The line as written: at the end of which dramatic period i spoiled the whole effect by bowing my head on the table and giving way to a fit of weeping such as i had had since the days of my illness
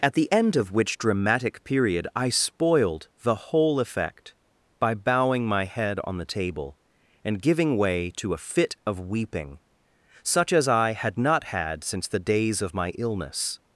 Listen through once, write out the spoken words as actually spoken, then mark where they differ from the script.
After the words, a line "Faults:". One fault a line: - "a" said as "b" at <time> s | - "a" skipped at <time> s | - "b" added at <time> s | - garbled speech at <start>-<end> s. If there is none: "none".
at the end of which dramatic period i spoiled the whole effect by bowing my head on the table and giving way to a fit of weeping such as i had not had since the days of my illness
Faults:
- "not" added at 11.2 s